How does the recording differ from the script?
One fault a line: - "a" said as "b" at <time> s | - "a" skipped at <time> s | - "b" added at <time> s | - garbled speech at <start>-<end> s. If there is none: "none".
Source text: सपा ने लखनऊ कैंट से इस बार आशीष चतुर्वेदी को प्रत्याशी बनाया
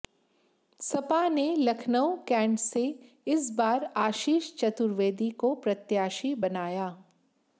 none